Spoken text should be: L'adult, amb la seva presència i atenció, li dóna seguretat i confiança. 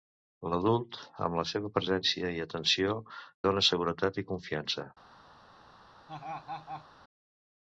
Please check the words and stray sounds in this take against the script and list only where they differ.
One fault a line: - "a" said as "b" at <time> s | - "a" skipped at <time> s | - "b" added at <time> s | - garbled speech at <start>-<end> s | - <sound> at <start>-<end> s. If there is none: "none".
- "li" skipped at 3.0 s
- laugh at 6.1-6.9 s